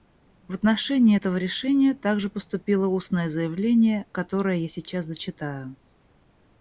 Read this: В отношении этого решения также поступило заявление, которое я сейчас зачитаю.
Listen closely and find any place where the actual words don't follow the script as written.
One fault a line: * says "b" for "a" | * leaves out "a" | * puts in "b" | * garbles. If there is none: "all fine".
* puts in "устное"